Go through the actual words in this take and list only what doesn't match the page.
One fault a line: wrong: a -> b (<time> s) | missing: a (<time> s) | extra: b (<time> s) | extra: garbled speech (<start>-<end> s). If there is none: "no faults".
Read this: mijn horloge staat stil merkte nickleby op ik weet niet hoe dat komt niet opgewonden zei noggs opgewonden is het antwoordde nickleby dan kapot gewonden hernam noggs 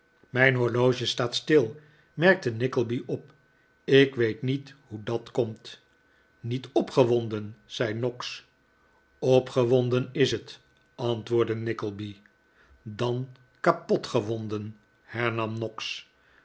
no faults